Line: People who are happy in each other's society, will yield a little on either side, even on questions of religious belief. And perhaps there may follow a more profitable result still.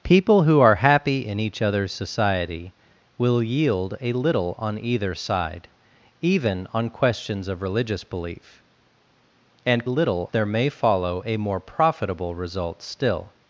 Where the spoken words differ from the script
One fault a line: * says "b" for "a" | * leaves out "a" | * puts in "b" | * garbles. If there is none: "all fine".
* says "little" for "perhaps"